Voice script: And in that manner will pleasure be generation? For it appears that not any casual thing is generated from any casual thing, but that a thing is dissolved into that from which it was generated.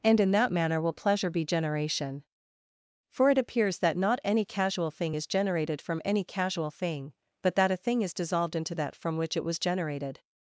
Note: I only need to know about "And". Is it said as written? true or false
true